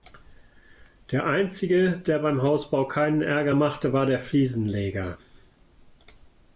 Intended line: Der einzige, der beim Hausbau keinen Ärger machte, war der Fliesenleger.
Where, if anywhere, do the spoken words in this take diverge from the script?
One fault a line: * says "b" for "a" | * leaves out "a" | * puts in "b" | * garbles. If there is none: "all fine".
all fine